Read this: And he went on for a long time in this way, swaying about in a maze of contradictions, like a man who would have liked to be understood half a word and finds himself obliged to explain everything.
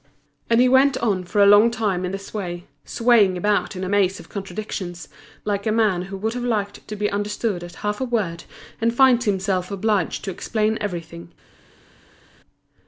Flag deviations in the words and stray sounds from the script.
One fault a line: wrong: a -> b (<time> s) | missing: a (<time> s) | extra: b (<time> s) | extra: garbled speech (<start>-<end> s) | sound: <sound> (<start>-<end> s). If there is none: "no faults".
extra: at (7.6 s)